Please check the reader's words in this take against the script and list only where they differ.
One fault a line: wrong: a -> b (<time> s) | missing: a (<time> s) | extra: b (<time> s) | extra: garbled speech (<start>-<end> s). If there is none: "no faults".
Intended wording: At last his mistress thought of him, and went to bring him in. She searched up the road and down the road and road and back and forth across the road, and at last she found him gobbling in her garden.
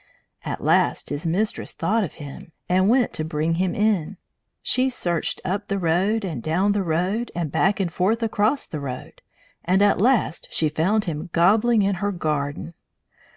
missing: road and (7.5 s)